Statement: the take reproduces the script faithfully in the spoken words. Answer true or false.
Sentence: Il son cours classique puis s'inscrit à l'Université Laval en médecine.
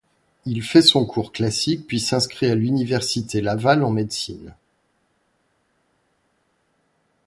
false